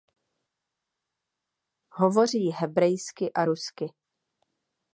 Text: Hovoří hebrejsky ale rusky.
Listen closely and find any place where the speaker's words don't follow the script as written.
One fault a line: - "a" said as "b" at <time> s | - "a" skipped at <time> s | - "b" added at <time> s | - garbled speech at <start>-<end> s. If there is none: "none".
- "ale" said as "a" at 3.3 s